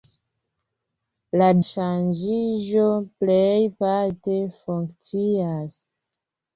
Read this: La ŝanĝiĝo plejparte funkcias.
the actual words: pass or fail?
pass